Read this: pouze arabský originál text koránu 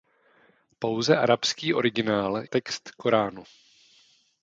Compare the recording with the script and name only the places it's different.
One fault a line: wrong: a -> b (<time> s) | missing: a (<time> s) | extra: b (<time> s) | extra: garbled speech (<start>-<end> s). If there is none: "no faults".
no faults